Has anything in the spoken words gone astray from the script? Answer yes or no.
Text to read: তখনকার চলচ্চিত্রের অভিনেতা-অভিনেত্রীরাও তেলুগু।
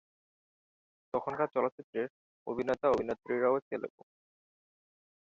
no